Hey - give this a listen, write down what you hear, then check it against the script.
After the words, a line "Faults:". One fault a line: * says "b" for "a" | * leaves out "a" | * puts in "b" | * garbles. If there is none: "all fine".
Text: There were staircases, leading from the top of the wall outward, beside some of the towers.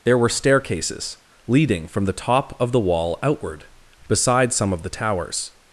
There were staircases, leading from the top of the wall outward, beside some of the towers.
Faults:
all fine